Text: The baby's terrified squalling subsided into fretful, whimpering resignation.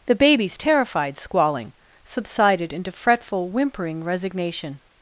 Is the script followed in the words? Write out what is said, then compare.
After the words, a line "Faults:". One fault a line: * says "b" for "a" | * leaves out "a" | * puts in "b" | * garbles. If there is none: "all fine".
The baby's terrified squalling subsided into fretful, whimpering resignation.
Faults:
all fine